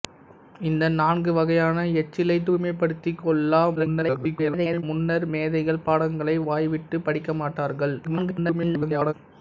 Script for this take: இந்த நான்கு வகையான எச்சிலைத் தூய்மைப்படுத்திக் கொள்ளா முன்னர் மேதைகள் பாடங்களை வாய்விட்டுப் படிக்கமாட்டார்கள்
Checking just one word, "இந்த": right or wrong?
right